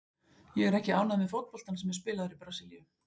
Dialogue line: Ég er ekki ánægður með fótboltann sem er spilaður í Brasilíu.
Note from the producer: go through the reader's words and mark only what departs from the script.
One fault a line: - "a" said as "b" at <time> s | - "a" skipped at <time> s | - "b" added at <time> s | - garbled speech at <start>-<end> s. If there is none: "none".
none